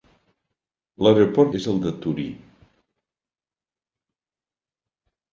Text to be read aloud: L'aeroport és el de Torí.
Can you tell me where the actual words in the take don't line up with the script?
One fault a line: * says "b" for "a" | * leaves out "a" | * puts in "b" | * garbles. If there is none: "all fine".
all fine